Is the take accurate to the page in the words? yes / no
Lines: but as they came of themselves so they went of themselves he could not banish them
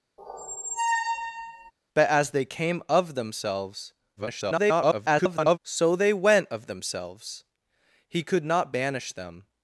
no